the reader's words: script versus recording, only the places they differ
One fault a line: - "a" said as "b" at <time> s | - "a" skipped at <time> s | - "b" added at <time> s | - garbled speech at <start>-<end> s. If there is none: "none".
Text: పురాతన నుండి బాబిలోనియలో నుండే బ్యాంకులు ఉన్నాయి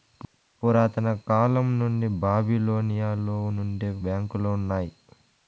- "కాలం" added at 1.3 s